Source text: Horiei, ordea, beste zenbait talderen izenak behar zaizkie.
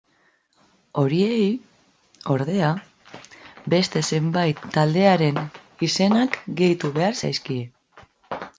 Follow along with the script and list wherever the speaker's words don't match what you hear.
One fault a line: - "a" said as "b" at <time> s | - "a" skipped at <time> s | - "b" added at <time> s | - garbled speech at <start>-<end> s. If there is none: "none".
- "gehitu" added at 6.6 s